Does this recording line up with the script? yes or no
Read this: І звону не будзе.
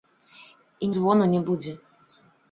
yes